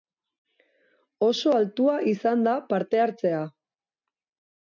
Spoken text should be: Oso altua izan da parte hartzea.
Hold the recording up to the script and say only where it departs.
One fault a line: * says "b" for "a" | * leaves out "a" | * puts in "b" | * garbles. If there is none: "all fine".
all fine